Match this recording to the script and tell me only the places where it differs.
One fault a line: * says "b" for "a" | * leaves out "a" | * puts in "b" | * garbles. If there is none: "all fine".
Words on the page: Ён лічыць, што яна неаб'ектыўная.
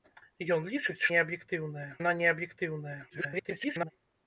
* says "неаб'ектыўная" for "што"
* garbles